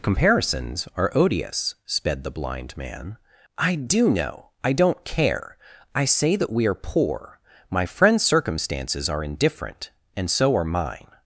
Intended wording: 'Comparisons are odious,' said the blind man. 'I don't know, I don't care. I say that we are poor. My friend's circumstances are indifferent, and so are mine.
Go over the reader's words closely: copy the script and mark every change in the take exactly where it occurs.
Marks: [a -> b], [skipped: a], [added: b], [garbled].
'Comparisons are odious,' [said -> sped] the blind man. 'I [don't -> do] know, I don't care. I say that we are poor. My friend's circumstances are indifferent, and so are mine.